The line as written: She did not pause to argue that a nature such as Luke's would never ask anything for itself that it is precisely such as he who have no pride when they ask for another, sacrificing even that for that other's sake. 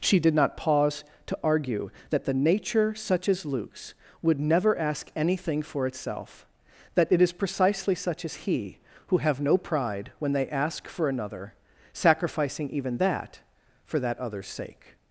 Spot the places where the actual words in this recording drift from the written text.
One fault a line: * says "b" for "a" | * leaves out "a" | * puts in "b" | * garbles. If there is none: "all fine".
* says "the" for "a"